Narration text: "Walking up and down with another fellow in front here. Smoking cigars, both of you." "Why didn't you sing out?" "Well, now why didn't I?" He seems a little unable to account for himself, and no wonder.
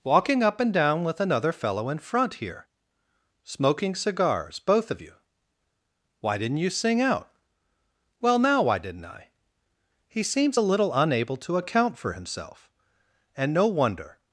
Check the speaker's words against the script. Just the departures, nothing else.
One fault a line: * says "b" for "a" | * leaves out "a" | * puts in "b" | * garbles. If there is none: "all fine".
all fine